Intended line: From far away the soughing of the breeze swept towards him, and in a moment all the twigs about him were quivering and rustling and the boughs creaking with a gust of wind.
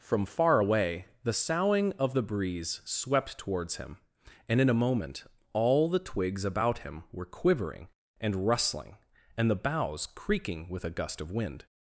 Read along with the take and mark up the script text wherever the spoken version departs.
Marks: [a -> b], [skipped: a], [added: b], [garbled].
From far away the soughing of the breeze swept towards him, and in a moment all the twigs about him were quivering and rustling and the boughs creaking with a gust of wind.